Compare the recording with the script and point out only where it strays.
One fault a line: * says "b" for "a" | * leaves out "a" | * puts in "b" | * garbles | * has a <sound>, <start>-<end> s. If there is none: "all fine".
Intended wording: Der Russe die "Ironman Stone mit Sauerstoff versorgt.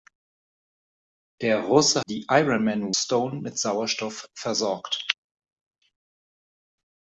all fine